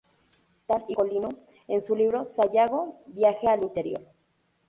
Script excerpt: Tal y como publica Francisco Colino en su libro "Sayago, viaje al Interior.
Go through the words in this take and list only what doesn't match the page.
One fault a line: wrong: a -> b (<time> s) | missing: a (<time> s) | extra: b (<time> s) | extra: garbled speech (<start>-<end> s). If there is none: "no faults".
missing: como publica Francisco (0.9 s)